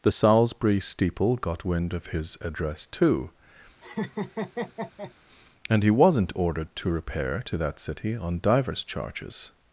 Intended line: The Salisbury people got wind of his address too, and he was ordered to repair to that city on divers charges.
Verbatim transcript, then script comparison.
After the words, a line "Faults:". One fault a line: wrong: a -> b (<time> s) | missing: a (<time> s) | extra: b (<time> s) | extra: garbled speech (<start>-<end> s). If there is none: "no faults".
The Salisbury steeple got wind of his address too, and he wasn't ordered to repair to that city on divers charges.
Faults:
wrong: people -> steeple (0.8 s)
wrong: was -> wasn't (5.9 s)